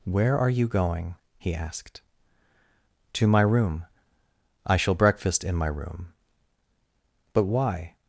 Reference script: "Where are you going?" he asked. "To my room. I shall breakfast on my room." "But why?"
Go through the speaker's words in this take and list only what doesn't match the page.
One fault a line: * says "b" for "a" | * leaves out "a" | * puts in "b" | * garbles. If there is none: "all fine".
* says "in" for "on"